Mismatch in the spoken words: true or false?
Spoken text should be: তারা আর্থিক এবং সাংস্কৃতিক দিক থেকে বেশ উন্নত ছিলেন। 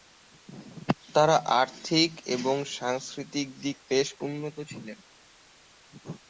true